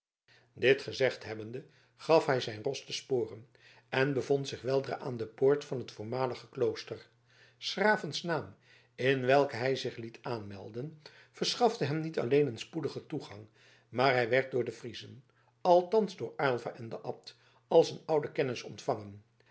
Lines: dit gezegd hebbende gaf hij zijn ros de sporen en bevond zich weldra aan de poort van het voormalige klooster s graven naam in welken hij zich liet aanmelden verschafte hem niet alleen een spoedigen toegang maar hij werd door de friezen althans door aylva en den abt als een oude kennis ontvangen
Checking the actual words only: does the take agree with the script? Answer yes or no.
yes